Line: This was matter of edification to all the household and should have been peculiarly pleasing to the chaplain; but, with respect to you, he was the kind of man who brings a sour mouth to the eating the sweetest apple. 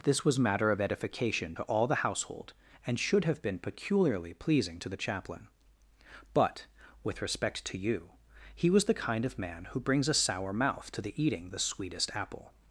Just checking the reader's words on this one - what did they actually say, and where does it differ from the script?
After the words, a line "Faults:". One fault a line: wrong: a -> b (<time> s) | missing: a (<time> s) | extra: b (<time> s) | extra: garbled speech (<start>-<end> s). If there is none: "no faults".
This was matter of edification to all the household and should have been peculiarly pleasing to the chaplain; but, with respect to you, he was the kind of man who brings a sour mouth to the eating the sweetest apple.
Faults:
no faults